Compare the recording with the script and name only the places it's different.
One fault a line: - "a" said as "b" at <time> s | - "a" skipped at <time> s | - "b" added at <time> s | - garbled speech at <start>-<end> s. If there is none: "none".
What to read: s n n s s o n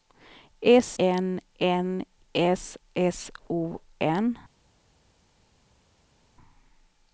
none